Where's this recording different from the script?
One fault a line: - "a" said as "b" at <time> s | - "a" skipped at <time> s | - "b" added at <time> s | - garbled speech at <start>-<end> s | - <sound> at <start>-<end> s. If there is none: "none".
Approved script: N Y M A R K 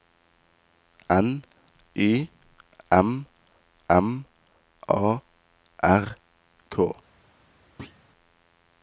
- "M" added at 3.9 s
- thud at 7.8-8.0 s